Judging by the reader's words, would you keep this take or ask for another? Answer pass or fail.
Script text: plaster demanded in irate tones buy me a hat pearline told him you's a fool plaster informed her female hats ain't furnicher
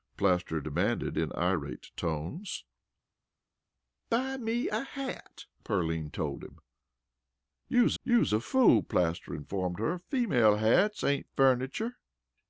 fail